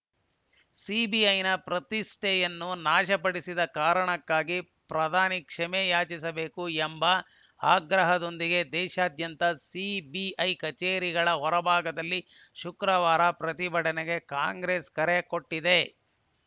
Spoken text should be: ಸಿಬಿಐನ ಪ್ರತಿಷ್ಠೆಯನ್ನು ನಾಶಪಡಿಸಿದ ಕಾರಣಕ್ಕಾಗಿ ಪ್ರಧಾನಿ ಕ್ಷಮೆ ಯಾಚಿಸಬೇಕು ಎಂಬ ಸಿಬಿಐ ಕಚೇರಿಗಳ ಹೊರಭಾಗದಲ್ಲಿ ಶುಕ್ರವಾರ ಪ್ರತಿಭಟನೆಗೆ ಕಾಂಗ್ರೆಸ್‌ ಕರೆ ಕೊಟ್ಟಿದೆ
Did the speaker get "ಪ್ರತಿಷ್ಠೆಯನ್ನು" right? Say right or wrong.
right